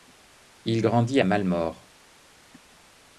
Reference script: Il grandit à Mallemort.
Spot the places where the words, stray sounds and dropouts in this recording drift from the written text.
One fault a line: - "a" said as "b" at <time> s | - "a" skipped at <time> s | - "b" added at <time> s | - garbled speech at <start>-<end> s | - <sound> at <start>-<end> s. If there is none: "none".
none